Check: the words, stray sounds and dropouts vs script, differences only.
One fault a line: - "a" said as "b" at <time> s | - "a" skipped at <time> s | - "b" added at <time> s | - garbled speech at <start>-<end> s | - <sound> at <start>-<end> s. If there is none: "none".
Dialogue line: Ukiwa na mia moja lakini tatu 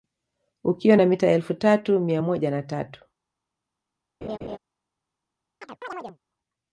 - "mita elfu tatu" added at 1.0 s
- "lakini" said as "na" at 2.5 s
- laugh at 4.2-4.6 s
- chirp at 5.6-6.2 s